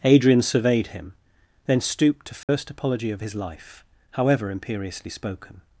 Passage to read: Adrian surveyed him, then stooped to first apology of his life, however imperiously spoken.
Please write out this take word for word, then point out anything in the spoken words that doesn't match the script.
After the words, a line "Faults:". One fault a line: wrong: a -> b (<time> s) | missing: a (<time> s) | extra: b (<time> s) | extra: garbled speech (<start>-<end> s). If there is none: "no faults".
Adrian surveyed him, then stooped to first apology of his life, however imperiously spoken.
Faults:
no faults